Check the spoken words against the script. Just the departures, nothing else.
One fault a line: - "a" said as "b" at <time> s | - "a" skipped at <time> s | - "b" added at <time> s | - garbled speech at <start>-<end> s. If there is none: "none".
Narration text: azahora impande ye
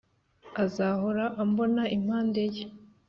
- "ambona" added at 1.4 s